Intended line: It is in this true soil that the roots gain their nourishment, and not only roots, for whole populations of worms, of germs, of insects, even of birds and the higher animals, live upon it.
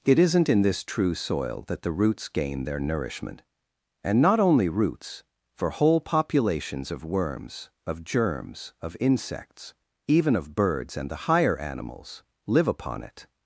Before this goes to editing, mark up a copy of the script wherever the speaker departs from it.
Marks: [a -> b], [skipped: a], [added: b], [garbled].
It [is -> isn't] in this true soil that the roots gain their nourishment, and not only roots, for whole populations of worms, of germs, of insects, even of birds and the higher animals, live upon it.